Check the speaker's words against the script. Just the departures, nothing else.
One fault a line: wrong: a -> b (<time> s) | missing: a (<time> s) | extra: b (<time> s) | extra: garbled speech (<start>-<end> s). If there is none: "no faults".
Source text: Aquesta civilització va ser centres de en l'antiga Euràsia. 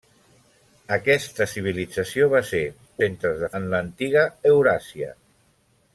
no faults